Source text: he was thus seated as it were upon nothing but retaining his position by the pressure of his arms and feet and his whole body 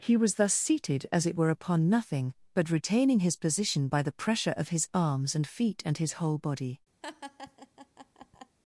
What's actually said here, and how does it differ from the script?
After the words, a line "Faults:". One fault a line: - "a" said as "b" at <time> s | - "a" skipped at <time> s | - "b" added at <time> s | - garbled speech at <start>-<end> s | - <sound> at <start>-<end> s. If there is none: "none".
he was thus seated as it were upon nothing but retaining his position by the pressure of his arms and feet and his whole body
Faults:
- laugh at 7.0-8.6 s